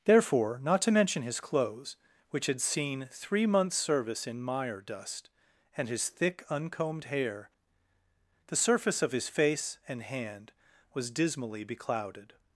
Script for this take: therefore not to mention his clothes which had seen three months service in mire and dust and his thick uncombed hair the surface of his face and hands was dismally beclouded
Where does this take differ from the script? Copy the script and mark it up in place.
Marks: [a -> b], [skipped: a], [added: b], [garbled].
therefore not to mention his clothes which had seen three months service in mire [skipped: and] dust and his thick uncombed hair the surface of his face and [hands -> hand] was dismally beclouded